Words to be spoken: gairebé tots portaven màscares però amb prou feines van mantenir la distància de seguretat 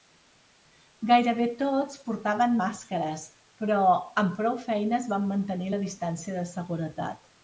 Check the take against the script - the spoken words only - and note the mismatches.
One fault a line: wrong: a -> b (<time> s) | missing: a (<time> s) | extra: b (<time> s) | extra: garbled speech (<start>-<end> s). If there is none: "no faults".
no faults